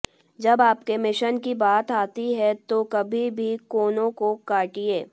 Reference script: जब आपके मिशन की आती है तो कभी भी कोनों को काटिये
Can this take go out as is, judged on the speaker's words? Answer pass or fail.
fail